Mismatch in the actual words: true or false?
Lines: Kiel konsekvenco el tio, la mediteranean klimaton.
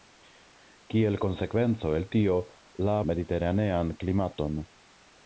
false